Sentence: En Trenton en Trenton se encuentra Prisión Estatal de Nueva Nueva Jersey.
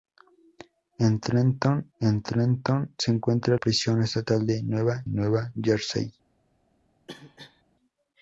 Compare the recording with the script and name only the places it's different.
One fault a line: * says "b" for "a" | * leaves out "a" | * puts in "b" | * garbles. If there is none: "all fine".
all fine